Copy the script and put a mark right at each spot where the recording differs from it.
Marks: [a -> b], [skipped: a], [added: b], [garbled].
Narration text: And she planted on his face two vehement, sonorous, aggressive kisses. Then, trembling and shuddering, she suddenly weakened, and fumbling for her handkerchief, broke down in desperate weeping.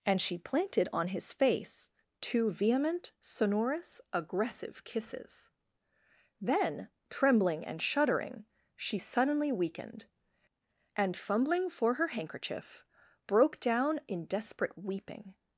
And she planted on his face two vehement, sonorous, aggressive kisses. Then, trembling and shuddering, she suddenly weakened, and fumbling for her handkerchief, broke down in desperate weeping.